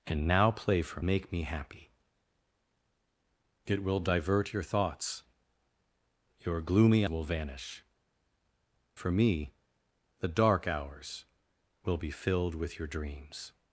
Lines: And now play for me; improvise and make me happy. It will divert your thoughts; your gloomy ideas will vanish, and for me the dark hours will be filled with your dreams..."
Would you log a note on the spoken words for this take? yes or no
yes